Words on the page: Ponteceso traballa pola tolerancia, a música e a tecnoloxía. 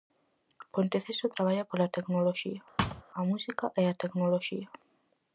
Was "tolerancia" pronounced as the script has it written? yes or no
no